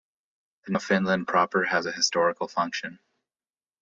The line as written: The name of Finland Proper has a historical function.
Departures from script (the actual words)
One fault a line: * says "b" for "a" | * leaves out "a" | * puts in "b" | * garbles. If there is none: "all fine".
* leaves out "name"